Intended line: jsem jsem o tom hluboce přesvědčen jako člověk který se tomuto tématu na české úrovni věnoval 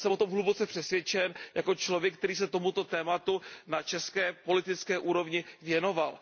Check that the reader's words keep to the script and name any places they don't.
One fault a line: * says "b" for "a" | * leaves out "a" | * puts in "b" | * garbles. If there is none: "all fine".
* leaves out "jsem"
* puts in "politické"